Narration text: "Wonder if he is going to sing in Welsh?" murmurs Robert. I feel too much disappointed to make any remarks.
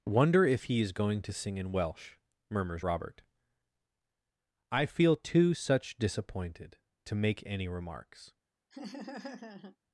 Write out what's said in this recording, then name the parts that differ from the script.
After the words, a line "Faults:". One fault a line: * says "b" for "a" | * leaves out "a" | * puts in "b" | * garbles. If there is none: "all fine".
"Wonder if he is going to sing in Welsh?" murmurs Robert. I feel too such disappointed to make any remarks.
Faults:
* says "such" for "much"